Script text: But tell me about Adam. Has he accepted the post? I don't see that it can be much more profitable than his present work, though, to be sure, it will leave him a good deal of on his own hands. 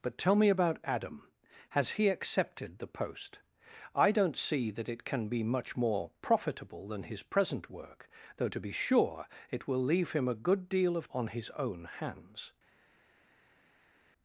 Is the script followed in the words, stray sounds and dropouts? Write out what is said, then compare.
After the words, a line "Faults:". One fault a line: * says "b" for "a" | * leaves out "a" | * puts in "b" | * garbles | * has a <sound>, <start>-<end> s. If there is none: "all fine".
But tell me about Adam. Has he accepted the post? I don't see that it can be much more profitable than his present work, though, to be sure, it will leave him a good deal of on his own hands.
Faults:
all fine